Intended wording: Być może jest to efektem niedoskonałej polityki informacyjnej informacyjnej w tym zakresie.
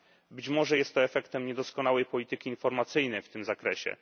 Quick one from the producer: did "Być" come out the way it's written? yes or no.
yes